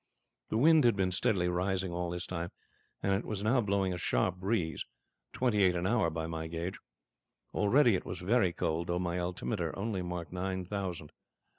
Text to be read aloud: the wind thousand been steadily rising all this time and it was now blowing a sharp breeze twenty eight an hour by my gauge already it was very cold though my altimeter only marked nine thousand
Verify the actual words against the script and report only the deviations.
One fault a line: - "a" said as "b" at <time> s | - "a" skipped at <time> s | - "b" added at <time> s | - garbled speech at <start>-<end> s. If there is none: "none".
- "thousand" said as "had" at 0.8 s